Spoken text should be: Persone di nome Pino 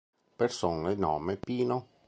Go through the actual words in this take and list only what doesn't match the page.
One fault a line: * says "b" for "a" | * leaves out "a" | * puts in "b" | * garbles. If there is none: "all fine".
* leaves out "di"